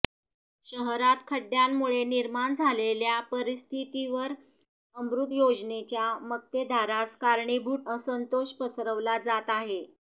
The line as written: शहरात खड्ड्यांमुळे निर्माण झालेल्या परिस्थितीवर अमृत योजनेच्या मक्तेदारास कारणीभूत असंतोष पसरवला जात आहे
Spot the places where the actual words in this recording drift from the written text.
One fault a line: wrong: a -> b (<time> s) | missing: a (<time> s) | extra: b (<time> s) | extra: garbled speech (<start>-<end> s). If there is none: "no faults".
no faults